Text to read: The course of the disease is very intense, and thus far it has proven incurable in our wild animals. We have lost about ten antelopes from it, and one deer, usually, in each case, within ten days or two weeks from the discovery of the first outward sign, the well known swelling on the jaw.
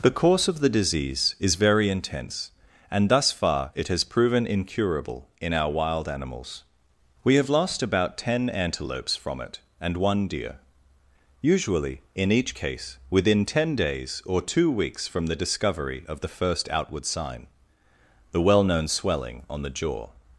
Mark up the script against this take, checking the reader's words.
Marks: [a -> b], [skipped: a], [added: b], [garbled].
The course of the disease is very intense, and thus far it has proven incurable in our wild animals. We have lost about ten antelopes from it, and one deer, usually, in each case, within ten days or two weeks from the discovery of the first outward sign, the well known swelling on the jaw.